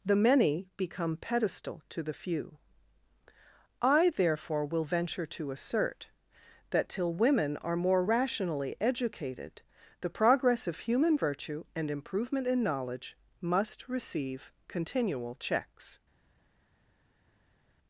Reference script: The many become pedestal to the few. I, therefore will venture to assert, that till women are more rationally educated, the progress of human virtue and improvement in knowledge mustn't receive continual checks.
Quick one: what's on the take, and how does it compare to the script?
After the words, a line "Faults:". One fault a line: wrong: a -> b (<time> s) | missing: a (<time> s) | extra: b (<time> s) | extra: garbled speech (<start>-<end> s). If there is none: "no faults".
The many become pedestal to the few. I, therefore will venture to assert, that till women are more rationally educated, the progress of human virtue and improvement in knowledge must receive continual checks.
Faults:
wrong: mustn't -> must (13.4 s)